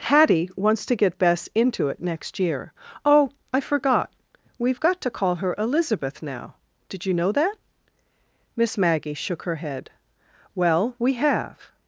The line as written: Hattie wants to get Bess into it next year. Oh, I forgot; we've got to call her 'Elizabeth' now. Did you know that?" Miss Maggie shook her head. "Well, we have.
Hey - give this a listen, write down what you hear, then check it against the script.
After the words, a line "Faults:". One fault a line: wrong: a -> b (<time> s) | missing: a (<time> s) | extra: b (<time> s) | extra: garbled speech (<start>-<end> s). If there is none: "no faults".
Hattie wants to get Bess into it next year. Oh, I forgot; we've got to call her 'Elizabeth' now. Did you know that?" Miss Maggie shook her head. "Well, we have.
Faults:
no faults